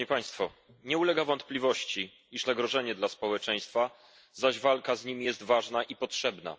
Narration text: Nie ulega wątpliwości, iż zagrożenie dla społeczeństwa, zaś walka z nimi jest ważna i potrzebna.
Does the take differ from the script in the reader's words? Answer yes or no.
no